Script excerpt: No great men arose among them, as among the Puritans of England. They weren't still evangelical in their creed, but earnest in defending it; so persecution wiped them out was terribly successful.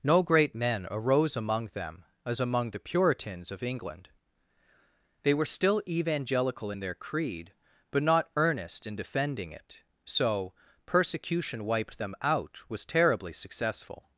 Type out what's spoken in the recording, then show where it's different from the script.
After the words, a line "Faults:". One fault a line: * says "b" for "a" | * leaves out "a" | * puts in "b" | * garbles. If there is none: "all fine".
No great men arose among them, as among the Puritans of England. They were still evangelical in their creed, but not earnest in defending it; so persecution wiped them out was terribly successful.
Faults:
* says "were" for "weren't"
* puts in "not"